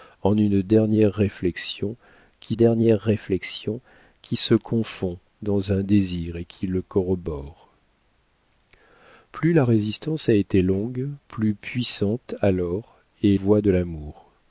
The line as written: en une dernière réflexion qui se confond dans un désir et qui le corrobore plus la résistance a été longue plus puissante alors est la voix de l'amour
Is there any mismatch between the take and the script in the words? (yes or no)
yes